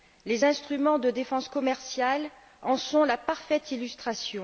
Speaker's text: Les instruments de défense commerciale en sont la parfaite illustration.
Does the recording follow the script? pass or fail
pass